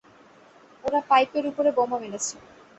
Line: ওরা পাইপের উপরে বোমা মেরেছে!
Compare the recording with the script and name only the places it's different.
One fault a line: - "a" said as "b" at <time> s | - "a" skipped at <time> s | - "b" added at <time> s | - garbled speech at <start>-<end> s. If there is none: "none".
none